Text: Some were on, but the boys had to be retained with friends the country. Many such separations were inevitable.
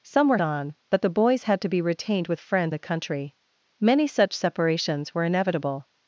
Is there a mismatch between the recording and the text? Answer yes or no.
no